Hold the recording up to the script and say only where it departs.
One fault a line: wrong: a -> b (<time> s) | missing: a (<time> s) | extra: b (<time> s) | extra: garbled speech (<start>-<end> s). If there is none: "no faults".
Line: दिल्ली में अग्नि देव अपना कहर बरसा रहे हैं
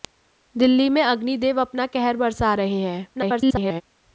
extra: garbled speech (3.1-3.8 s)